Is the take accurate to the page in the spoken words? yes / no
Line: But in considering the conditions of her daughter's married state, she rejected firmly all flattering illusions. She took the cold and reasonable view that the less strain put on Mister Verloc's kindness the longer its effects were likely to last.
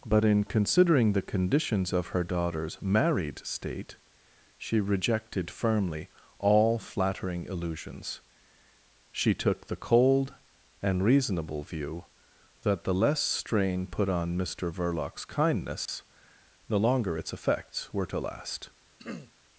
no